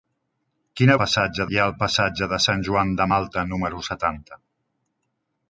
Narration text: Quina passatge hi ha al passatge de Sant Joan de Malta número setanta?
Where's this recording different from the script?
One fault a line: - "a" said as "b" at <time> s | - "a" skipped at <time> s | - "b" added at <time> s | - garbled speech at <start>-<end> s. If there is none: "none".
none